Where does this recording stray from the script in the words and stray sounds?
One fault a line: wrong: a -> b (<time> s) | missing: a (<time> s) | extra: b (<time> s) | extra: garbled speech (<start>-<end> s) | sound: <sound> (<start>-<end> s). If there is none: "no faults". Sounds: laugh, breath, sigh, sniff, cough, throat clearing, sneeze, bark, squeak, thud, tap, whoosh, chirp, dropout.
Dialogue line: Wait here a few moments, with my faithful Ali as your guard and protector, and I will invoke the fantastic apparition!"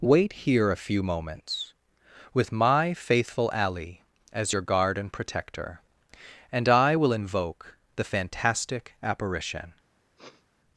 sound: sniff (10.2-10.4 s)